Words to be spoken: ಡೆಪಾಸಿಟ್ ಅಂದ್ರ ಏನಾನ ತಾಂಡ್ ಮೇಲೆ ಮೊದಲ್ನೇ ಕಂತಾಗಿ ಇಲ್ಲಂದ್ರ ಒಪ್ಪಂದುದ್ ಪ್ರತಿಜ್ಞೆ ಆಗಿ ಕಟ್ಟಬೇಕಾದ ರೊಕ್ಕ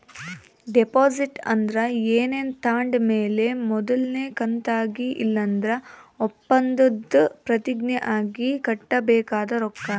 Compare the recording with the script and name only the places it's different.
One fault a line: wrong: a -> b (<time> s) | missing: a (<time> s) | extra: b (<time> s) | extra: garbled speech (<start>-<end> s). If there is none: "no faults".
no faults